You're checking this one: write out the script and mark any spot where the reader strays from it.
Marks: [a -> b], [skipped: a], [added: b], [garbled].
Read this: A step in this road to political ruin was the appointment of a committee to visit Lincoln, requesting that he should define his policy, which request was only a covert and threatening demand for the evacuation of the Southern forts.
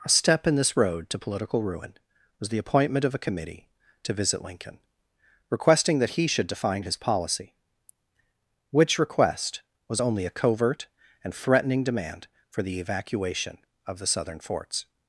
A step in this road to political ruin was the appointment of a committee to visit Lincoln, requesting that he should define his policy, which request was only a covert and threatening demand for the evacuation of the Southern forts.